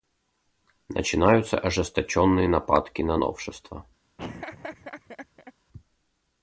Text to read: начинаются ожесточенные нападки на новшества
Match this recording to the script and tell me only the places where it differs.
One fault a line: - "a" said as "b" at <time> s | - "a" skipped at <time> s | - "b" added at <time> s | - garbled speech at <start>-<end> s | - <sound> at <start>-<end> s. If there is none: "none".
- laugh at 4.2-5.5 s